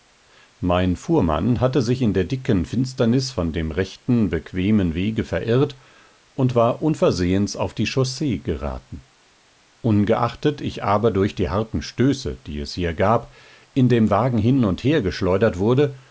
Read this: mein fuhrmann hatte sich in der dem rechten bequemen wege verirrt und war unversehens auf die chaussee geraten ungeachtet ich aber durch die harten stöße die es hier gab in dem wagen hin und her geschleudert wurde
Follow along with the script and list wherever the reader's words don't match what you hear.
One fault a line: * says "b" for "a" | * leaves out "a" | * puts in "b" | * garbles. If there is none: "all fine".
* puts in "dicken finsternis von"